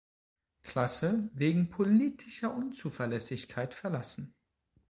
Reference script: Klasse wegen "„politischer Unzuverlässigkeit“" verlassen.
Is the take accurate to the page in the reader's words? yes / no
yes